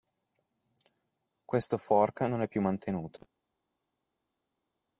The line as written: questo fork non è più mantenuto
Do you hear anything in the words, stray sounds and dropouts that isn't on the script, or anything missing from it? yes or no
no